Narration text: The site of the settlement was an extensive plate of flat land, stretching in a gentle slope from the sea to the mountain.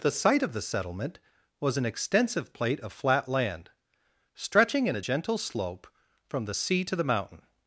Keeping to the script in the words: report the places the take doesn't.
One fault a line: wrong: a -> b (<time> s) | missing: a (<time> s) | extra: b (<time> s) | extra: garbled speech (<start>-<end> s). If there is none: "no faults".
no faults